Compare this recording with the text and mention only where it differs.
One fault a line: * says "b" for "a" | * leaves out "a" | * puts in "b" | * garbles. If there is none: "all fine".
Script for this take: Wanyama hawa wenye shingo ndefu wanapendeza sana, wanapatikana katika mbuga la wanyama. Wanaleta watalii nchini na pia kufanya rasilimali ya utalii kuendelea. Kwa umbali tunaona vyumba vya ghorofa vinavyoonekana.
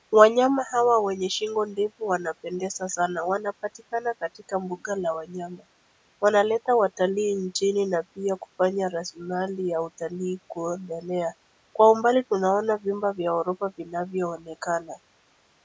all fine